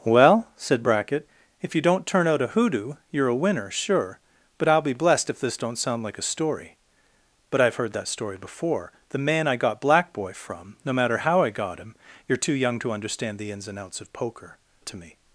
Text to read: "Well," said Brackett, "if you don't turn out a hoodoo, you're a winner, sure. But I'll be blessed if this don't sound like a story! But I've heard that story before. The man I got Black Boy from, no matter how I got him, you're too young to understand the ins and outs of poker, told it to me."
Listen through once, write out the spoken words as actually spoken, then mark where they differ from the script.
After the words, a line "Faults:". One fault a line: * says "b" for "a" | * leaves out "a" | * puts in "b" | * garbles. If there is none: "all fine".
"Well," said Brackett, "if you don't turn out a hoodoo, you're a winner, sure. But I'll be blessed if this don't sound like a story! But I've heard that story before. The man I got Black Boy from, no matter how I got him, you're too young to understand the ins and outs of poker, it to me."
Faults:
* leaves out "told"